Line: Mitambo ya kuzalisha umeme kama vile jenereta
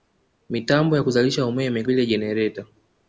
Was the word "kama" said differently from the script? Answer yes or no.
yes